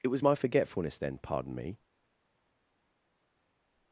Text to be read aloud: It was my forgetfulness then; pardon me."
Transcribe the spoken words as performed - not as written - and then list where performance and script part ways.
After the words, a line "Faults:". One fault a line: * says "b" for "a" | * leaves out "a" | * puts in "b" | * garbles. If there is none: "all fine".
It was my forgetfulness then; pardon me."
Faults:
all fine